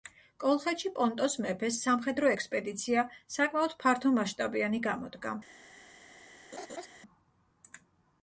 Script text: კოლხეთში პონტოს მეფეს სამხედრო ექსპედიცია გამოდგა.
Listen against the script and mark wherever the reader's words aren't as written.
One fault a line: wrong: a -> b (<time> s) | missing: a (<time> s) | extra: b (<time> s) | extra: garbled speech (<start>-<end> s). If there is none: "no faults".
extra: საკმაოდ ფართომასშტაბიანი (3.4 s)